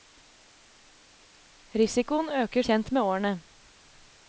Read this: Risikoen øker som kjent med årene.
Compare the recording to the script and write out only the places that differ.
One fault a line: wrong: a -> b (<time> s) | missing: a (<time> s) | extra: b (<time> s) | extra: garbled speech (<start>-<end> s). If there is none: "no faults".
missing: som (2.6 s)